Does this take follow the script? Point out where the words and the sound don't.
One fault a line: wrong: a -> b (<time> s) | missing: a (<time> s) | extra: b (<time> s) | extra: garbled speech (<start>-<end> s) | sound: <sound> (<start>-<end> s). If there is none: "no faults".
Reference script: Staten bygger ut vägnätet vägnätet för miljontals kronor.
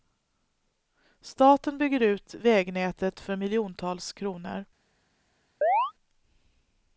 missing: vägnätet (3.2 s)
sound: chirp (5.6-5.9 s)